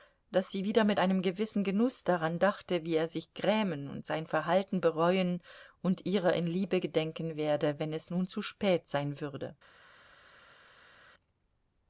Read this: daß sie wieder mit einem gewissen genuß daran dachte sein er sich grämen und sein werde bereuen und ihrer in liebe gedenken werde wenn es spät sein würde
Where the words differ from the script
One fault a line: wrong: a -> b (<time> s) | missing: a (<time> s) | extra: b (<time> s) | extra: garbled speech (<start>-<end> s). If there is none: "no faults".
wrong: sein -> wie (2.8 s)
wrong: werde -> verhalten (4.3 s)
extra: nun zu (8.1 s)